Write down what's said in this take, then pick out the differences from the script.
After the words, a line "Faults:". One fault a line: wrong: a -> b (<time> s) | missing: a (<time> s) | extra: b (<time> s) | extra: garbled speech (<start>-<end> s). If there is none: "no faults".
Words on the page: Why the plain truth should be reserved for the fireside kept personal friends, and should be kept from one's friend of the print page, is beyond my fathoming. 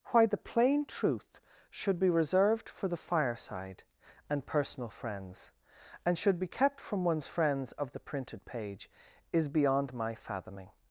Why the plain truth should be reserved for the fireside and personal friends, and should be kept from one's friends of the printed page, is beyond my fathoming.
Faults:
wrong: kept -> and (4.3 s)
wrong: friend -> friends (7.3 s)
wrong: print -> printed (8.0 s)